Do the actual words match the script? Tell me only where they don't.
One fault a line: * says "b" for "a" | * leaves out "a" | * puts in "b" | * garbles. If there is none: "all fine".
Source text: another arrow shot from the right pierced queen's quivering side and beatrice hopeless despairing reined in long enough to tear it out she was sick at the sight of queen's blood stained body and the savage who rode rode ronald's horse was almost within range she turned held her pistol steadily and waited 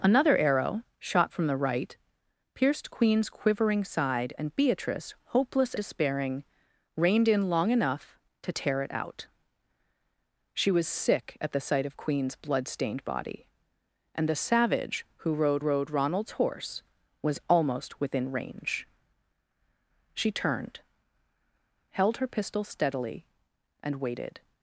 all fine